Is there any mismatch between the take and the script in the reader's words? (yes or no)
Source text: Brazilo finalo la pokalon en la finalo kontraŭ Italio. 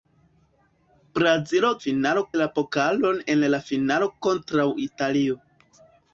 no